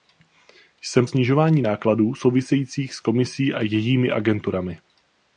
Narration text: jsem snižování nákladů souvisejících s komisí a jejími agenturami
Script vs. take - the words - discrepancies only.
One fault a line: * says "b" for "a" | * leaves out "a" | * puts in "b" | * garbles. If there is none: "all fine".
all fine